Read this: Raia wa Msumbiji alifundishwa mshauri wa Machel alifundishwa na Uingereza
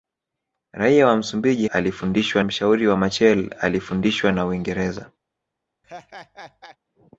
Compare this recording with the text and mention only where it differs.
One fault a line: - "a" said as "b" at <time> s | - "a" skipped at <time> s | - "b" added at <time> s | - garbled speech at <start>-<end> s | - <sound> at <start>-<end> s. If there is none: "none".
- laugh at 5.8-6.8 s